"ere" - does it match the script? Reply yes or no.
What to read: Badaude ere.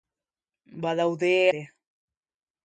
yes